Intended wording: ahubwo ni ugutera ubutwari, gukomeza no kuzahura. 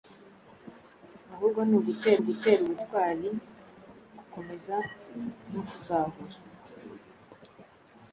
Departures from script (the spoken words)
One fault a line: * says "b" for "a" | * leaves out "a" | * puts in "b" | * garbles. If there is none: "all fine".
* puts in "ugutera"